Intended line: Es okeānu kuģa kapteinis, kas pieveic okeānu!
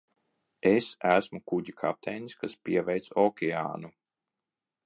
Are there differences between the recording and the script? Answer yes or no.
yes